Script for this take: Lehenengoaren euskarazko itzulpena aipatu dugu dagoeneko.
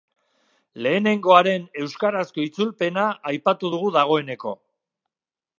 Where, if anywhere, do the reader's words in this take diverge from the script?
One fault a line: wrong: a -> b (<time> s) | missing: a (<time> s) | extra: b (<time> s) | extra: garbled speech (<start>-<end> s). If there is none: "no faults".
no faults